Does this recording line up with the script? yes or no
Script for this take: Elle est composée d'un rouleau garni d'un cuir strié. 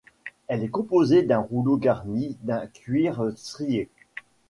yes